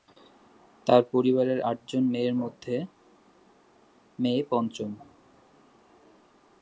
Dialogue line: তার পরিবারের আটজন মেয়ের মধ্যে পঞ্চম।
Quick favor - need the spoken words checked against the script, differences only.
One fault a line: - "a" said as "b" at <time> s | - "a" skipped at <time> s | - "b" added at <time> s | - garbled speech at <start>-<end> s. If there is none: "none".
- "মে" added at 4.2 s